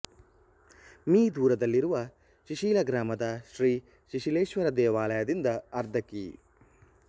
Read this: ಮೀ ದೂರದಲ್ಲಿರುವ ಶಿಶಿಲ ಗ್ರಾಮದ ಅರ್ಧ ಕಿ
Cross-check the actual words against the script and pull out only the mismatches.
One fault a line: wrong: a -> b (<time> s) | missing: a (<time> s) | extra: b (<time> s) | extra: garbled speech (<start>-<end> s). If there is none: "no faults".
extra: ಶ್ರೀ ಶಿಶಿಲೇಶ್ವರ ದೇವಾಲಯದಿಂದ (3.5 s)